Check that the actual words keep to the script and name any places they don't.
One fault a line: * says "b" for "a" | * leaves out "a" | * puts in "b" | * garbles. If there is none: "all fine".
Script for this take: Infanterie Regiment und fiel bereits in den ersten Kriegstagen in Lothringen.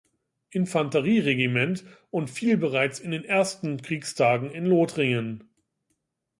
all fine